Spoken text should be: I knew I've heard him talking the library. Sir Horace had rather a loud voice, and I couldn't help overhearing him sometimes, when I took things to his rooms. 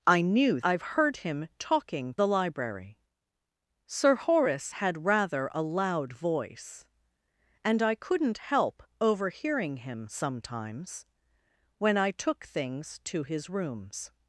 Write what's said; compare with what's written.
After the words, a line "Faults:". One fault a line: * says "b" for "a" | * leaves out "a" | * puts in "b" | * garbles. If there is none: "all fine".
I knew I've heard him talking the library. Sir Horace had rather a loud voice, and I couldn't help overhearing him sometimes, when I took things to his rooms.
Faults:
all fine